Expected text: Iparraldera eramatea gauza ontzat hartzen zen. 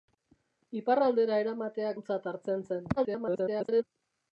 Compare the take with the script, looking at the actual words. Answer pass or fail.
fail